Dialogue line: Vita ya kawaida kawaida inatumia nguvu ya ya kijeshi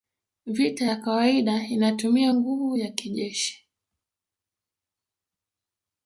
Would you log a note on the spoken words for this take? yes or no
yes